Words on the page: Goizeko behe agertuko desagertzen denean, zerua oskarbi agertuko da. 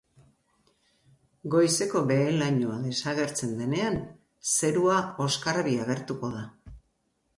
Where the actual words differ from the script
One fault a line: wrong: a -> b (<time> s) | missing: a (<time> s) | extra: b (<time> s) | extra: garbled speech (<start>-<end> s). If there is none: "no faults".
wrong: agertuko -> lainoa (2.4 s)